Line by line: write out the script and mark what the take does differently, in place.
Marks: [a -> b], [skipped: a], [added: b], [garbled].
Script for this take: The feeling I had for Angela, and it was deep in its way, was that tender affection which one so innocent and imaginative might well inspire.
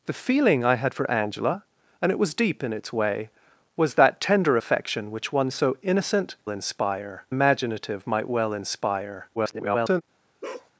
The feeling I had for Angela, and it was deep in its way, was that tender affection which one so innocent [and -> inspire] imaginative might well inspire. [garbled]